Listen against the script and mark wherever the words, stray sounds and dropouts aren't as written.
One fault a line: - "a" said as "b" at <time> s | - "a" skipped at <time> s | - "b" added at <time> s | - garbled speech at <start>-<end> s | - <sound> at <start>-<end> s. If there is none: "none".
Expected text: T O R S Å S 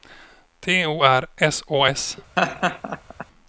- laugh at 2.4-3.3 s